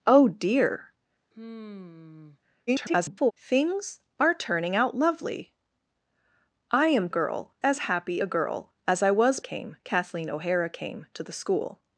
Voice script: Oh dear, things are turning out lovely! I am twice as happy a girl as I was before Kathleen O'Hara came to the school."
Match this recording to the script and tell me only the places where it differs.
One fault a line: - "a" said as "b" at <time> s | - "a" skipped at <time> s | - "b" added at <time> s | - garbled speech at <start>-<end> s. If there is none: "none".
- garbled speech at 2.7-3.3 s
- "twice" said as "girl" at 7.1 s
- "before" said as "came" at 9.4 s